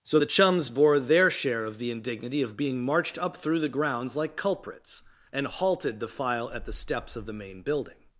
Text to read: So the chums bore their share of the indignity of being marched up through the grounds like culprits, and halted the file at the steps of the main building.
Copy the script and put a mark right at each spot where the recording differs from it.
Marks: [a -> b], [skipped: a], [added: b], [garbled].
So the chums bore their share of the indignity of being marched up through the grounds like culprits, and halted the file at the steps of the main building.